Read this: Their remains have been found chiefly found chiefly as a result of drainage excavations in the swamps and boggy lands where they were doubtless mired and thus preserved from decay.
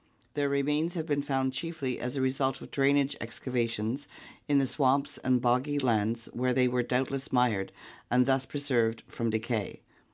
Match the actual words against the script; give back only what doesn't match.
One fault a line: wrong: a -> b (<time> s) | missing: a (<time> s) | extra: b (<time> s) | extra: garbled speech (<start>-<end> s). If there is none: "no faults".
missing: found chiefly (2.0 s)